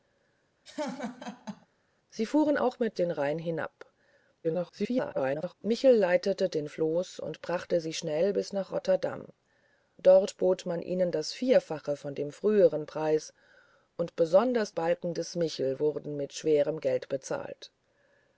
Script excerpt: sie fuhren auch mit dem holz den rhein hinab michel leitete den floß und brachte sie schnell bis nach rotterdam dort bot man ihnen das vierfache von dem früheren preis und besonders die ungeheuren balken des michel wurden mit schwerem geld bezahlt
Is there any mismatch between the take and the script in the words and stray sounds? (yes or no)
yes